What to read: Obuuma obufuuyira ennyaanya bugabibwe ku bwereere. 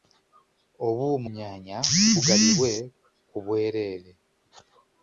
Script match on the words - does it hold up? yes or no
no